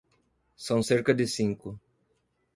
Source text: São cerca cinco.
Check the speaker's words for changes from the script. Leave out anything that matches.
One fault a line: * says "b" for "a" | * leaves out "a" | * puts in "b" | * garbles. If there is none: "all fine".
* puts in "de"